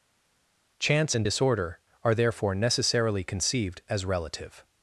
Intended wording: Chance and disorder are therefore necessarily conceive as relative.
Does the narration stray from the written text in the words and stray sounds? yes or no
yes